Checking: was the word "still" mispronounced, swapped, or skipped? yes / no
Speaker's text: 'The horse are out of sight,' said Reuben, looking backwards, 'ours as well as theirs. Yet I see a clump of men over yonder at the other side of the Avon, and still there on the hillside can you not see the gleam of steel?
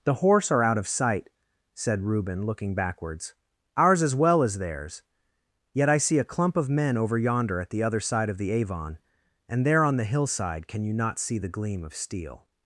yes